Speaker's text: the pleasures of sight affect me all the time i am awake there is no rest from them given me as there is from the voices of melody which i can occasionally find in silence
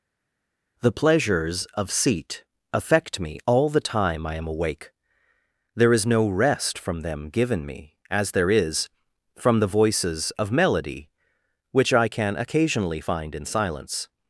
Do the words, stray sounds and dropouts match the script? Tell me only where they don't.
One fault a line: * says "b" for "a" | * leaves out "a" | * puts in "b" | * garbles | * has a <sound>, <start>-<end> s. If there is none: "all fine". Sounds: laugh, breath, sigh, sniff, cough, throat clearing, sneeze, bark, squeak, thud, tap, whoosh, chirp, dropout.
* says "seat" for "sight"